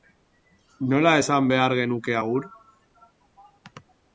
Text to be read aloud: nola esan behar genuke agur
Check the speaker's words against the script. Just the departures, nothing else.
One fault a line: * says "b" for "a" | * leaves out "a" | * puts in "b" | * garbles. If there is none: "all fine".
all fine